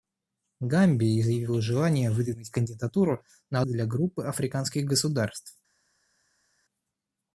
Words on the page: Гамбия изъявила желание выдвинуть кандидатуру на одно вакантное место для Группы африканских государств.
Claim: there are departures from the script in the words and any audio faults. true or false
true